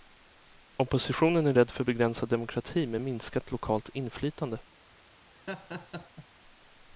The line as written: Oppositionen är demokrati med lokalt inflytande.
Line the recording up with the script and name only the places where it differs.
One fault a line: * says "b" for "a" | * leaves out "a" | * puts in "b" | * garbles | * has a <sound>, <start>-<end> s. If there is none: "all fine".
* puts in "rädd för begränsad"
* puts in "minskat"
* has a laugh, 5.3-6.3 s